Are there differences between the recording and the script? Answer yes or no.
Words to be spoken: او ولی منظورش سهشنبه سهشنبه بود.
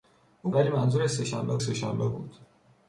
no